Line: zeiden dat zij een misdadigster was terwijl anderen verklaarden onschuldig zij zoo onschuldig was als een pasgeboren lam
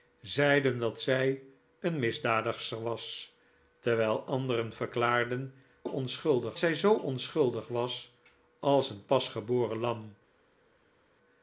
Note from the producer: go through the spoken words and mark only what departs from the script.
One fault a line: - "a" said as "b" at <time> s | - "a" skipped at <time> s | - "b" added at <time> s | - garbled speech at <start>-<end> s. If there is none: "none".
none